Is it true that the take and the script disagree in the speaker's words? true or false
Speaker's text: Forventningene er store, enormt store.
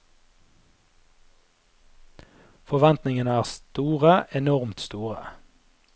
false